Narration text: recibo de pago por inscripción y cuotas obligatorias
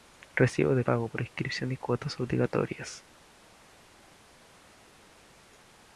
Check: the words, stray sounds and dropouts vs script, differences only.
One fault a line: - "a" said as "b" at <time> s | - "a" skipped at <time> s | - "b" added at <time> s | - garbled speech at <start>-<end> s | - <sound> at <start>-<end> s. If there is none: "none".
none